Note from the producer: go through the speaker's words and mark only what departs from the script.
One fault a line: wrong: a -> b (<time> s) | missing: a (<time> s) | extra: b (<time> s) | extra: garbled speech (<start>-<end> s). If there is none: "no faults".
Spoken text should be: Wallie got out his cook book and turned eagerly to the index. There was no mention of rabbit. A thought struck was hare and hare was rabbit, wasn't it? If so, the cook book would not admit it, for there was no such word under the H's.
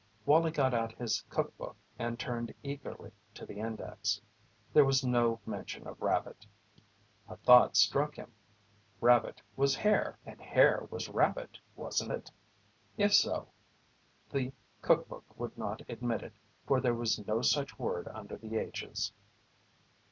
extra: him rabbit (8.1 s)